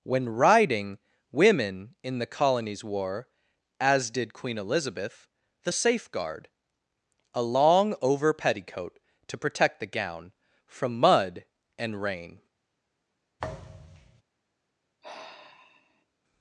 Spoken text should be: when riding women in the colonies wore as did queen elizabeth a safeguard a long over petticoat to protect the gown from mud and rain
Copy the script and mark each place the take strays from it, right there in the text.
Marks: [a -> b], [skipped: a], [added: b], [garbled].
when riding women in the colonies wore as did queen elizabeth [a -> the] safeguard a long over petticoat to protect the gown from mud and rain